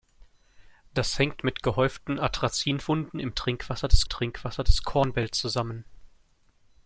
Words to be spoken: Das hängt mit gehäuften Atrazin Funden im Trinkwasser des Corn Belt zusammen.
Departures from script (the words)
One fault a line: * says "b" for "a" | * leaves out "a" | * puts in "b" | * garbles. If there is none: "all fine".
* puts in "Trinkwasser des"